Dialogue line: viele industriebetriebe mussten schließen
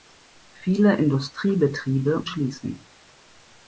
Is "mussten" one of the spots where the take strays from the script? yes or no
yes